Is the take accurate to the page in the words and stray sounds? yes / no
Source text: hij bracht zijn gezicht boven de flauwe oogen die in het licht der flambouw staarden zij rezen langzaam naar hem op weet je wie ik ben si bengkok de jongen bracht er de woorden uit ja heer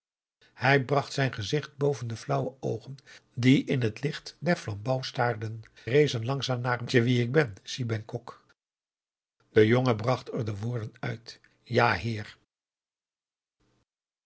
no